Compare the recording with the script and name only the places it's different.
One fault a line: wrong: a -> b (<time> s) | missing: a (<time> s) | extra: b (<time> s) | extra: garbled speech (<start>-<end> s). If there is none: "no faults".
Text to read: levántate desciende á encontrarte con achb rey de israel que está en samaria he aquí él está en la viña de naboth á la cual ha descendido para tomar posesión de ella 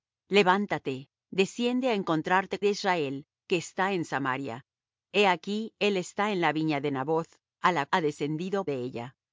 missing: con achb rey (2.5 s)
missing: cual (7.9 s)
missing: para tomar posesión (8.6 s)